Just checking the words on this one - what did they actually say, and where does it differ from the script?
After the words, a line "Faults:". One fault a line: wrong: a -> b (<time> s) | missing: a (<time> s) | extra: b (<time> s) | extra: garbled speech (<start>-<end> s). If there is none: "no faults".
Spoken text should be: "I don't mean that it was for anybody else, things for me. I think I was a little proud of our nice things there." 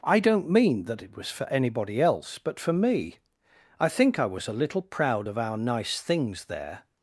"I don't mean that it was for anybody else, but for me. I think I was a little proud of our nice things there."
Faults:
wrong: things -> but (2.4 s)